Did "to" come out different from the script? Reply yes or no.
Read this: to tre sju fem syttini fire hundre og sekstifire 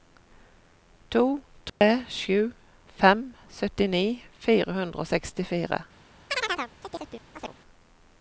no